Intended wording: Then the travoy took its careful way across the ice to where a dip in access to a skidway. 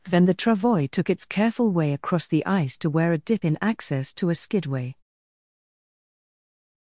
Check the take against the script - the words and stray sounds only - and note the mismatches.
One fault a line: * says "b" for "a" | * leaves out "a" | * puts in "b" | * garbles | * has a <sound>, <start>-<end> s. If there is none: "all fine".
all fine